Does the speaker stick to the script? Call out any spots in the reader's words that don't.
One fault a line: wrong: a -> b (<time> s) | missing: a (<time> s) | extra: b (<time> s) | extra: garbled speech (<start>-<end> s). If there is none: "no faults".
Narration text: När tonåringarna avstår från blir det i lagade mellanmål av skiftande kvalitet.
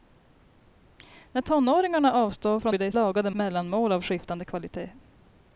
no faults